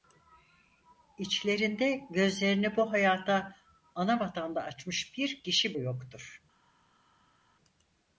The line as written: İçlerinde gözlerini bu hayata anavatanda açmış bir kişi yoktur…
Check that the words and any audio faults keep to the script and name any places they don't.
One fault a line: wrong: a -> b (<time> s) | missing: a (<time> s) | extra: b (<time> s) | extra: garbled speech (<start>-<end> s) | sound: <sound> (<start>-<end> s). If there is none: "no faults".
no faults